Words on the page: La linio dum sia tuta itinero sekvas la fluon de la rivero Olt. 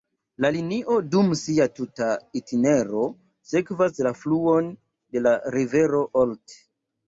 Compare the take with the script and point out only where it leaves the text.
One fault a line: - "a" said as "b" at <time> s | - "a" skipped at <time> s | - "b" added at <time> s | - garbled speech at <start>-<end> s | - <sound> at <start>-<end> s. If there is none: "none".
none